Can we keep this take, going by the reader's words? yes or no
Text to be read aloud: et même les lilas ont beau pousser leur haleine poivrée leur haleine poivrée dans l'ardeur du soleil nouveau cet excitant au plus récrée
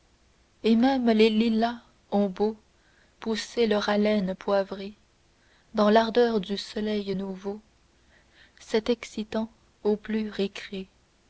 no